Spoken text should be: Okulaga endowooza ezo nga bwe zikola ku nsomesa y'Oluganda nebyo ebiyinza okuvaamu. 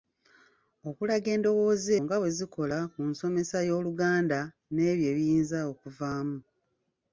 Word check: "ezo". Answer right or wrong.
wrong